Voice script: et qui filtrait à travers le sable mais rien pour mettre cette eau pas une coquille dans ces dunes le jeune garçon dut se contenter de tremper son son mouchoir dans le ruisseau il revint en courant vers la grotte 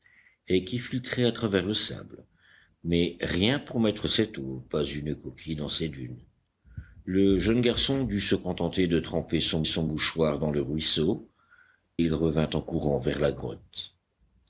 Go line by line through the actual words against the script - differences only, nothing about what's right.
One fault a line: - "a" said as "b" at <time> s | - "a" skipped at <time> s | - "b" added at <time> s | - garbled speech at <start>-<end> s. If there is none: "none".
none